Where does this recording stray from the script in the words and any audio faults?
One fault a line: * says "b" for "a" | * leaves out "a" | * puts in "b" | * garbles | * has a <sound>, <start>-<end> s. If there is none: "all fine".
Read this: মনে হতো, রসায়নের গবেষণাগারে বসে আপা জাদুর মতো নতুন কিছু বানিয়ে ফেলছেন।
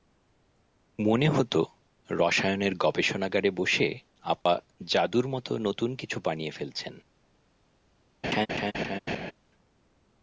* has a dropout, 4.4-4.5 s
* has a laugh, 8.2-9.3 s